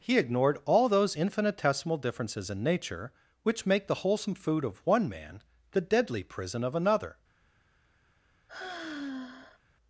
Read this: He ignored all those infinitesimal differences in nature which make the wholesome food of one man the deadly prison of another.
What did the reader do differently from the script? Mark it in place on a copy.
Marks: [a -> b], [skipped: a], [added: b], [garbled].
He ignored all those infinitesimal differences in nature which make the wholesome food of one man the deadly prison of another.